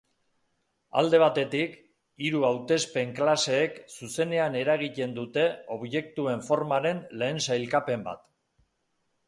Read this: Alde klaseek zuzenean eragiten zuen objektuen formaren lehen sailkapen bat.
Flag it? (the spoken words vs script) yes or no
yes